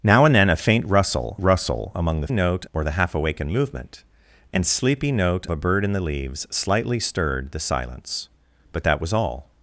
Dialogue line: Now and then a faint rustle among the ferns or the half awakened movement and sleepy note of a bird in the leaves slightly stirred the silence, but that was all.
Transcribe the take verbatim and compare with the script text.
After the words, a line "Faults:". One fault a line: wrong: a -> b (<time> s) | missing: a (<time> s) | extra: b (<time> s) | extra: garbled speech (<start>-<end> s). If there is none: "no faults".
Now and then a faint rustle rustle among the note or the half awakened movement and sleepy note a bird in the leaves slightly stirred the silence, but that was all.
Faults:
extra: rustle (1.4 s)
wrong: ferns -> note (2.3 s)
missing: of (5.4 s)